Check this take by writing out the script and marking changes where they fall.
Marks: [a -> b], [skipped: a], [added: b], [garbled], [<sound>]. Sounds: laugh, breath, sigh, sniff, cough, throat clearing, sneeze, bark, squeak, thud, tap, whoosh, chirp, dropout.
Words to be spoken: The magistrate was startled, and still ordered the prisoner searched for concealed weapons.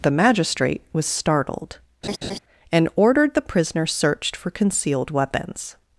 The magistrate was startled, [laugh] and [skipped: still] ordered the prisoner searched for concealed weapons.